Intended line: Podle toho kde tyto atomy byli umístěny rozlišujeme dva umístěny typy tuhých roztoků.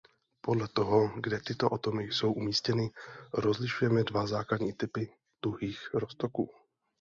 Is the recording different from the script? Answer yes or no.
yes